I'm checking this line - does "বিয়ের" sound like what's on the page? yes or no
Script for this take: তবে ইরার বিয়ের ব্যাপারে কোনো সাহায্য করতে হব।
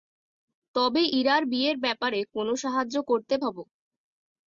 yes